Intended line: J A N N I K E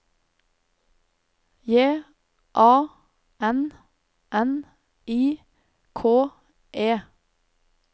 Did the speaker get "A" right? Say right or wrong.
right